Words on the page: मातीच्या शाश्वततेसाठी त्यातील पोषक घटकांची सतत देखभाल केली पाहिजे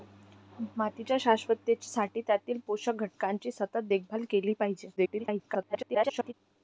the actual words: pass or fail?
fail